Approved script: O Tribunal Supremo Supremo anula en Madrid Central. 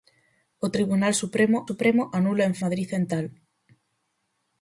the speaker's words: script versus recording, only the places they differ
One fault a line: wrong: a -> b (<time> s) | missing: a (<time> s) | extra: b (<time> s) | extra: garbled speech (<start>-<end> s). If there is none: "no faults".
no faults